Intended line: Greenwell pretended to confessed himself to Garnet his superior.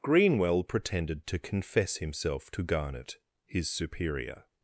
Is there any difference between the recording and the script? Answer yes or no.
yes